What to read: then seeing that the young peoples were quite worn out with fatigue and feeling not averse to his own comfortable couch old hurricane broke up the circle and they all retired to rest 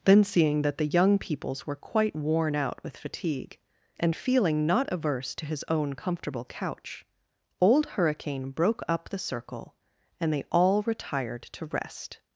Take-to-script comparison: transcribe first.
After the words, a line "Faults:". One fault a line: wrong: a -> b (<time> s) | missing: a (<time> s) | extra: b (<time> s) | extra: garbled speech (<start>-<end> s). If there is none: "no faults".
then seeing that the young peoples were quite worn out with fatigue and feeling not averse to his own comfortable couch old hurricane broke up the circle and they all retired to rest
Faults:
no faults